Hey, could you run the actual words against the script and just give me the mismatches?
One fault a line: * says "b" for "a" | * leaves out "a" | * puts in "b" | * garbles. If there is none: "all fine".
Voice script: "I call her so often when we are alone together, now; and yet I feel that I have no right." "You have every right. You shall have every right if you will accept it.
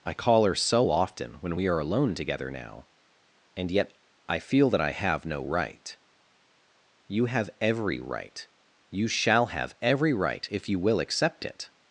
all fine